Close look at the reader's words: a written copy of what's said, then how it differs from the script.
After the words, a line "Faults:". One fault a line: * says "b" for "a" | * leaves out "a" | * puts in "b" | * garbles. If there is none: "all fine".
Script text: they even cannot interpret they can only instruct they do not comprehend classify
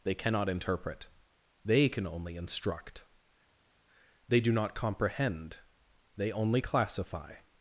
they cannot interpret they can only instruct they do not comprehend they only classify
Faults:
* leaves out "even"
* puts in "they only"